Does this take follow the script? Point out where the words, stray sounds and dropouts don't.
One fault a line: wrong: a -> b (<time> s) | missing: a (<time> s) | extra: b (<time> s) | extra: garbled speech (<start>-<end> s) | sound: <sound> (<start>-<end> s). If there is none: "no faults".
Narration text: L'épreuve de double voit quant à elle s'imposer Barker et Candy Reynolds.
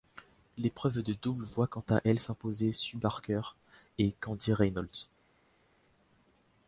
extra: Sue (2.7 s)